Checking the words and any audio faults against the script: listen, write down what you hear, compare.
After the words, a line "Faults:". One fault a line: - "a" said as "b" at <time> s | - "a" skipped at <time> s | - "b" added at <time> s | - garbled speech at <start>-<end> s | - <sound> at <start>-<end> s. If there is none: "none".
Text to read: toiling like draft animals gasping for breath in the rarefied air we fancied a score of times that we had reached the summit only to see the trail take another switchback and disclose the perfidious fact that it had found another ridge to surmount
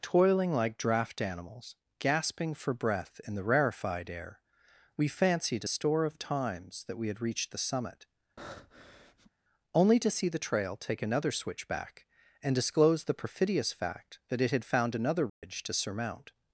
toiling like draft animals gasping for breath in the rarefied air we fancied a store of times that we had reached the summit only to see the trail take another switchback and disclose the perfidious fact that it had found another ridge to surmount
Faults:
- "score" said as "store" at 5.6 s
- breath at 8.4-9.3 s
- dropout at 15.3-15.4 s